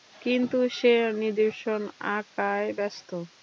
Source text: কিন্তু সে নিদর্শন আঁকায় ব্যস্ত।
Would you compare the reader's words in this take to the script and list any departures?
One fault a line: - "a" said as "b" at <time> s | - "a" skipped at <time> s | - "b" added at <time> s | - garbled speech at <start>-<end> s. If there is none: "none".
none